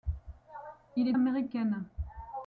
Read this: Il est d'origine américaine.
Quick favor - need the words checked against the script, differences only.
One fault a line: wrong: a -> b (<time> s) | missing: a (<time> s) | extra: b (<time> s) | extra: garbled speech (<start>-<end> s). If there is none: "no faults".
missing: d'origine (1.1 s)